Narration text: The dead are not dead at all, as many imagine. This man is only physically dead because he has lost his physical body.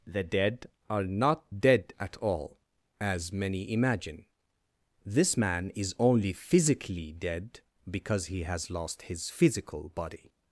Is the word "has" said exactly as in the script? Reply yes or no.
yes